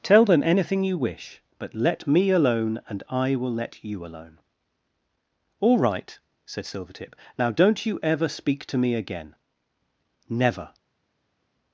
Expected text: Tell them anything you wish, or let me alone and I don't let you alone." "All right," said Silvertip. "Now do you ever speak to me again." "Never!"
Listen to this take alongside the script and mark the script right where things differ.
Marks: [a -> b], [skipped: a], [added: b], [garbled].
Tell them anything you wish, [or -> but] let me alone and I [don't -> will] let you alone." "All right," said Silvertip. "Now [do -> don't] you ever speak to me again." "Never!"